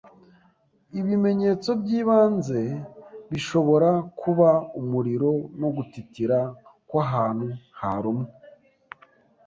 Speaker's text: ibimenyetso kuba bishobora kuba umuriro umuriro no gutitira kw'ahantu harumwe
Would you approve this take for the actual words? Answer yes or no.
no